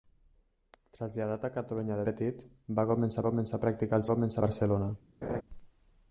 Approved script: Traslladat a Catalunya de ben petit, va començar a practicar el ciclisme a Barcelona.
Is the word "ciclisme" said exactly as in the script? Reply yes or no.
no